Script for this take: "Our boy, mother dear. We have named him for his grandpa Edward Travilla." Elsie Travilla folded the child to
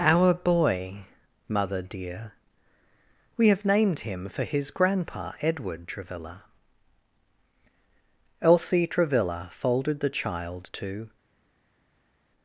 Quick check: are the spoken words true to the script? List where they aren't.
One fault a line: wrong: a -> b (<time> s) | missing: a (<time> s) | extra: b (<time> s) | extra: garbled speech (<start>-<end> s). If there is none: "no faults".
no faults